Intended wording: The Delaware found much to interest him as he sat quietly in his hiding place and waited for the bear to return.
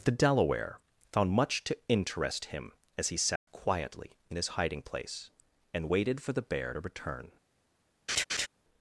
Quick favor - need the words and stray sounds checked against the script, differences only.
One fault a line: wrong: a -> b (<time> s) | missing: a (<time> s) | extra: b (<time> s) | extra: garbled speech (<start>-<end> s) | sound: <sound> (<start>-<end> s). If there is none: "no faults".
sound: dropout (3.4-3.5 s)
sound: laugh (8.1-8.5 s)